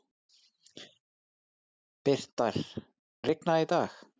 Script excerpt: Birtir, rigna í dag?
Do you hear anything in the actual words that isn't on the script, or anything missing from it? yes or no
no